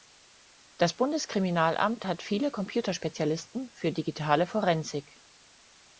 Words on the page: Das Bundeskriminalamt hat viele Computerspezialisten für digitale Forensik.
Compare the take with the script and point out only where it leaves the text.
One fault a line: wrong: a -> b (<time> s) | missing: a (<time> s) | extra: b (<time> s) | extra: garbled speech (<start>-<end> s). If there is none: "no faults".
no faults